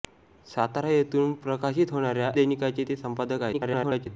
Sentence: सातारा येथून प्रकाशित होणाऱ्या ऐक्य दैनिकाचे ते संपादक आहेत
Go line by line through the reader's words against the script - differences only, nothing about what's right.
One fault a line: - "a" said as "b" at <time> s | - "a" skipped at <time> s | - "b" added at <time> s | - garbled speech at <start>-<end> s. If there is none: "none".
- "ऐक्य" skipped at 2.3 s
- garbled speech at 3.5-4.1 s